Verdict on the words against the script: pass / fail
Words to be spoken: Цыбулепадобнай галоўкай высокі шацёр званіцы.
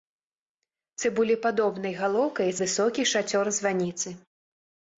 pass